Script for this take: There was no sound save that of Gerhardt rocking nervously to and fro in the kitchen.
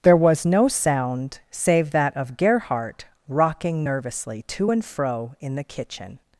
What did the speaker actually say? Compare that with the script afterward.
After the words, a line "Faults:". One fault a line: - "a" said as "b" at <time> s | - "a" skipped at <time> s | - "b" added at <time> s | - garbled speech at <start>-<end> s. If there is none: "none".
There was no sound save that of Gerhardt rocking nervously to and fro in the kitchen.
Faults:
none